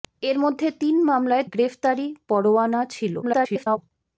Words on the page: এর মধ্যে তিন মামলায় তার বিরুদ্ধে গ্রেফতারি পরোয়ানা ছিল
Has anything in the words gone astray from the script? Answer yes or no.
yes